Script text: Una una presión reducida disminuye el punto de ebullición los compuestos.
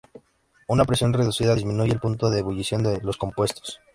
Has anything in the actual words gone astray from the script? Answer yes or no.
yes